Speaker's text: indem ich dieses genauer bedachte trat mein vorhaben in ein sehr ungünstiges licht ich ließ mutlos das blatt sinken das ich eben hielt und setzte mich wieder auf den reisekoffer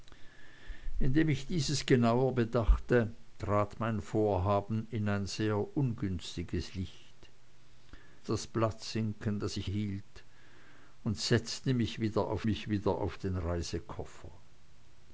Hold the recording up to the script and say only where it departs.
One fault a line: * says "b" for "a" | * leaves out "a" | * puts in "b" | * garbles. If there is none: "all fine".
* leaves out "ich ließ mutlos"
* leaves out "eben"
* puts in "mich wieder auf"